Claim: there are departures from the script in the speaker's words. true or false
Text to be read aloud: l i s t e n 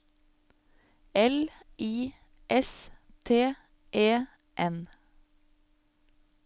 false